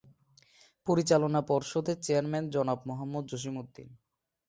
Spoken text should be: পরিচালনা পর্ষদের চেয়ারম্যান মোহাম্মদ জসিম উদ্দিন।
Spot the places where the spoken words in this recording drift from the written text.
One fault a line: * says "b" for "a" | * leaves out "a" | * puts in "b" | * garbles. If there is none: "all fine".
* puts in "জনাব"